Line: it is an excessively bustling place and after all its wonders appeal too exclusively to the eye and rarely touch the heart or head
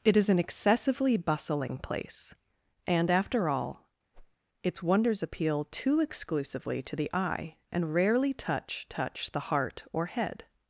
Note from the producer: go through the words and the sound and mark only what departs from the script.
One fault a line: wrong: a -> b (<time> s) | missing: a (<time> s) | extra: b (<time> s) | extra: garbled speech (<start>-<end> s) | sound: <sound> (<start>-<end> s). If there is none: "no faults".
sound: whoosh (4.1-4.4 s)
extra: touch (8.9 s)